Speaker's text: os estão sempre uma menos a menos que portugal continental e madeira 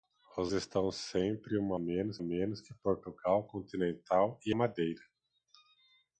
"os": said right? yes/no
yes